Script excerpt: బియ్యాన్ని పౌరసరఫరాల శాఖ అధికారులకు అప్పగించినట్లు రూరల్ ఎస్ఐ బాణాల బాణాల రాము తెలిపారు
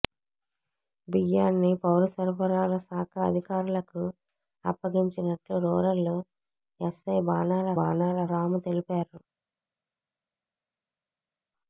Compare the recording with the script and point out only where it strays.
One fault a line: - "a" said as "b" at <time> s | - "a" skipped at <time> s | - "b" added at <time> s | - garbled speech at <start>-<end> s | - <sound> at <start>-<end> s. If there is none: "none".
none